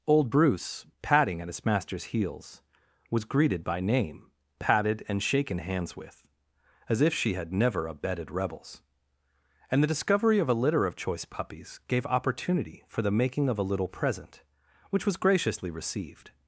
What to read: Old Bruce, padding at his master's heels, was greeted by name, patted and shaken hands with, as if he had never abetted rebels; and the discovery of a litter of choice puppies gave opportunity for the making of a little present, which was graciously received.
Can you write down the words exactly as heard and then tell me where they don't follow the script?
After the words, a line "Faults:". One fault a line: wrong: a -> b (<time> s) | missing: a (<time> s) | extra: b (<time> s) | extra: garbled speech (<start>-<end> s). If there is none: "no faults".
Old Bruce, padding at his master's heels, was greeted by name, patted and shaken hands with, as if she had never abetted rebels; and the discovery of a litter of choice puppies gave opportunity for the making of a little present, which was graciously received.
Faults:
wrong: he -> she (7.1 s)